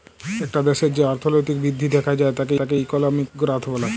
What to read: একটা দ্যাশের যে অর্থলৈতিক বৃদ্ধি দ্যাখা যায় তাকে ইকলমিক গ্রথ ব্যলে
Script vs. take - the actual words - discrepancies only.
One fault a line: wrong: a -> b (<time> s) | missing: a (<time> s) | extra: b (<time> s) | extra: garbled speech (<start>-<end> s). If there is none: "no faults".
extra: তাকে (2.6 s)